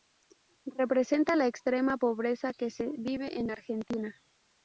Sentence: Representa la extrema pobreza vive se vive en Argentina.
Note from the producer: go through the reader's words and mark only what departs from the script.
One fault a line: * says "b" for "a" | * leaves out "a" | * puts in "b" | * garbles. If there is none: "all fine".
* says "que" for "vive"